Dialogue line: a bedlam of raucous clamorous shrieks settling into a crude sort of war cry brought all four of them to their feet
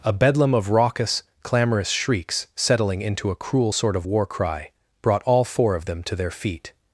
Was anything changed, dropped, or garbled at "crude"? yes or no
yes